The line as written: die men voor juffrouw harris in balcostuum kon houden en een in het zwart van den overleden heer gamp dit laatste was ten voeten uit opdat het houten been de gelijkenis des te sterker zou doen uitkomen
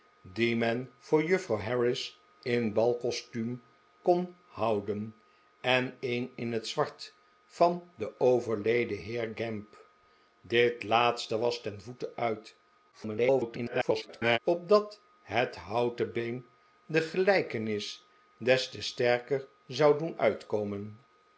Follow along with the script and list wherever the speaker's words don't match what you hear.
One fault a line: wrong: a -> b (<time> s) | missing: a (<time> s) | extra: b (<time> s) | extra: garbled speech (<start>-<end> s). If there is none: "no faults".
extra: garbled speech (12.9-14.4 s)